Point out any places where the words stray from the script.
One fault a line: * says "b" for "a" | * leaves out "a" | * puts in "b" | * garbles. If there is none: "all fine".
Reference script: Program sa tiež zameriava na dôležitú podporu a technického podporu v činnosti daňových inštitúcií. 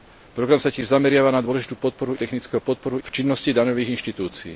all fine